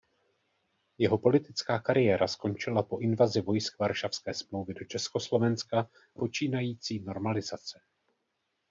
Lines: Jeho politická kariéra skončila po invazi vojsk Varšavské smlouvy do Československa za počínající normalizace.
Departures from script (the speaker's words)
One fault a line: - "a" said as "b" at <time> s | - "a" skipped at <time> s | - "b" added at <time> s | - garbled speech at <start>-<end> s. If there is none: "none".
- "za" skipped at 5.9 s